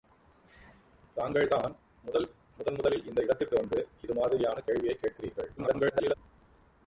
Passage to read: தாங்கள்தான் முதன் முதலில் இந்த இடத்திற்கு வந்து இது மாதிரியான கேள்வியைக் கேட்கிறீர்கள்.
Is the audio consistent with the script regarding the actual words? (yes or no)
no